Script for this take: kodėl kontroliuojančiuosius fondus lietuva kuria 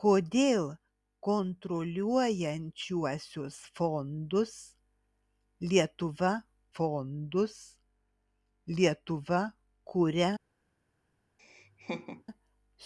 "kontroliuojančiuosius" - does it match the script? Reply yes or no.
yes